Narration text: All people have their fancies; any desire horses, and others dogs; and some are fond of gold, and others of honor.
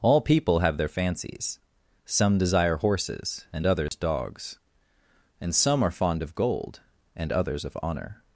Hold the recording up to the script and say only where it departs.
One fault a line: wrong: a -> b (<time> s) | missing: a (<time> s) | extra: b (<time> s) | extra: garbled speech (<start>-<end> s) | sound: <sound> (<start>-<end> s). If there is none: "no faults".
wrong: any -> some (2.0 s)
sound: dropout (3.9-3.9 s)